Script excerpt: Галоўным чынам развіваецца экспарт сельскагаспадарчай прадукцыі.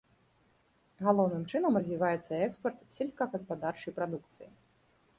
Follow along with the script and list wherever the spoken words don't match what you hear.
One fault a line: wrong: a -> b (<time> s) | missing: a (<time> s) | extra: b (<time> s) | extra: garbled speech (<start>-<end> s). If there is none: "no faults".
no faults